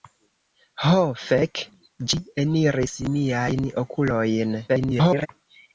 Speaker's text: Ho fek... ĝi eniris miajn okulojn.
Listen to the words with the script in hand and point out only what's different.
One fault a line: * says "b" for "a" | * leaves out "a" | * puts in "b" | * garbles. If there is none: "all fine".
* garbles